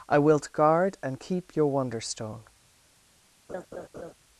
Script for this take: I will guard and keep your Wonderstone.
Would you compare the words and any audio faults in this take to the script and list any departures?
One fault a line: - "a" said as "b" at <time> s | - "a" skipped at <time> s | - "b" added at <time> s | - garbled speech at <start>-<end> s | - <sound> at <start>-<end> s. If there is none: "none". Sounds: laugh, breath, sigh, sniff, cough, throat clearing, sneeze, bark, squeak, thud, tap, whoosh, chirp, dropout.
- "will" said as "wilt" at 0.2 s
- laugh at 3.5-4.1 s